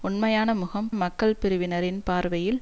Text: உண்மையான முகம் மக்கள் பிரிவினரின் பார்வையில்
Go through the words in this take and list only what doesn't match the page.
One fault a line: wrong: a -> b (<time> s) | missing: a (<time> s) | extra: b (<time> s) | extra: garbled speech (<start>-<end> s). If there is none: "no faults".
no faults